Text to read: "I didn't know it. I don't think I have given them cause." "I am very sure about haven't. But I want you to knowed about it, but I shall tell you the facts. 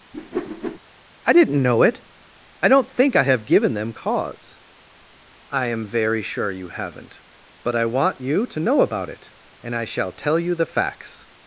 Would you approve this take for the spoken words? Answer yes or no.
no